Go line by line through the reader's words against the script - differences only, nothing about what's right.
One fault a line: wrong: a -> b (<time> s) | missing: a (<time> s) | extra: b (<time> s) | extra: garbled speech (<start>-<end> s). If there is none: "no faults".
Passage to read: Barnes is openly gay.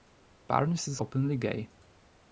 no faults